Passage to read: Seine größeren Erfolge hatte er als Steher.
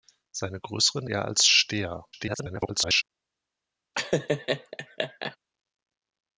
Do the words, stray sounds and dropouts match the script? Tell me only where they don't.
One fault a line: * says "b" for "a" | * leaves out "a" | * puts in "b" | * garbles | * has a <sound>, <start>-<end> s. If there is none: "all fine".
* leaves out "Erfolge hatte"
* garbles
* has a laugh, 3.9-5.4 s